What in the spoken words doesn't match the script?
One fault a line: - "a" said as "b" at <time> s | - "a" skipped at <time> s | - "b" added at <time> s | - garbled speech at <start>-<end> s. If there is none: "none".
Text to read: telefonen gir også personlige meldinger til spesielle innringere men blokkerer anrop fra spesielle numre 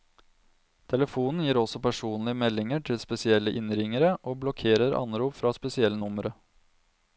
- "men" said as "og" at 4.2 s